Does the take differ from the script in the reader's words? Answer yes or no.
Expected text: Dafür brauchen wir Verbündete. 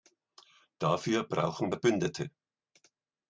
yes